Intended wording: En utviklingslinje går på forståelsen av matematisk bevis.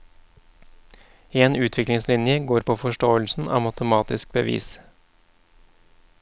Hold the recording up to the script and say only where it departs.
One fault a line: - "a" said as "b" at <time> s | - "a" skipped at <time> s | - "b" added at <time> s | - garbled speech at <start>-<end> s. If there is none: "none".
none